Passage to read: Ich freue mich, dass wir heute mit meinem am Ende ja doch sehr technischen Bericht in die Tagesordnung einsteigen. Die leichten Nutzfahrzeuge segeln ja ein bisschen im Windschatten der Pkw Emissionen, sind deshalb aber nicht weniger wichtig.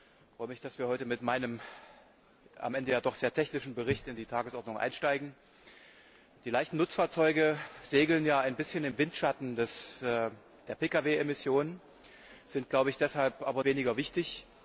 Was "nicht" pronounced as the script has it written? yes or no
no